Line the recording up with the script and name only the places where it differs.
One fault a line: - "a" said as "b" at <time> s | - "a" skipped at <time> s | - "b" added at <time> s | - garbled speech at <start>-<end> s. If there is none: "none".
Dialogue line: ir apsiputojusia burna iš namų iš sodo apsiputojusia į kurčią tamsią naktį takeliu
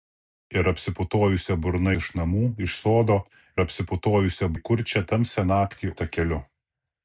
none